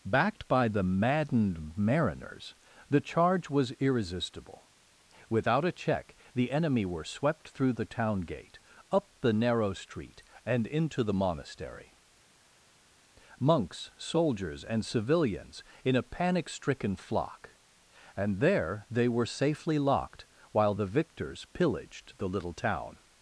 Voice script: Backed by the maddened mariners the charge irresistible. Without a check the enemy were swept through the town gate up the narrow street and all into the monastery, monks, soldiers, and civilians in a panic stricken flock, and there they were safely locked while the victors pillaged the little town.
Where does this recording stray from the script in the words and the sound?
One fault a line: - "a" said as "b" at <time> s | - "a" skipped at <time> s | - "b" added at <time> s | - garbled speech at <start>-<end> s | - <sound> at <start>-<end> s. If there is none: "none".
- "was" added at 3.5 s
- "all" skipped at 10.7 s